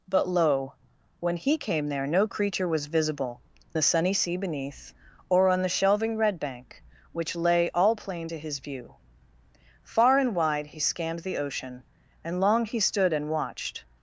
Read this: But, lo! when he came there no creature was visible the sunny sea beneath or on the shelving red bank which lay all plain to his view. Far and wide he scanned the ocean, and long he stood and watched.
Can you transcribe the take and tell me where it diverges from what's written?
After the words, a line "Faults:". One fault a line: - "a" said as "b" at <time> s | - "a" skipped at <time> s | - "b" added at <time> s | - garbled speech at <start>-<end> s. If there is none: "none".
But, lo! when he came there no creature was visible the sunny sea beneath or on the shelving red bank which lay all plain to his view. Far and wide he scanned the ocean, and long he stood and watched.
Faults:
none